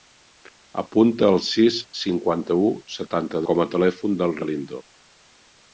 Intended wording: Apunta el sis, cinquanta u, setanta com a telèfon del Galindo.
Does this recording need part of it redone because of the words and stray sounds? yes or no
no